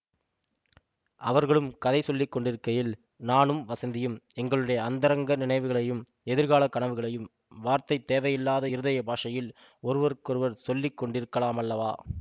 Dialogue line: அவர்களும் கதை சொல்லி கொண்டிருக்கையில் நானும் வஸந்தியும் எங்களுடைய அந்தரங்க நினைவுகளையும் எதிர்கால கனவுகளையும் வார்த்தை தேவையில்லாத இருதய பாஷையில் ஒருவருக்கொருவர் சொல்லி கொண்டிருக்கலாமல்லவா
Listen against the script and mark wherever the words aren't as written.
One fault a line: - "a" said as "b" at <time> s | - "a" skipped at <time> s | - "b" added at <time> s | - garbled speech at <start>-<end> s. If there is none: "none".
none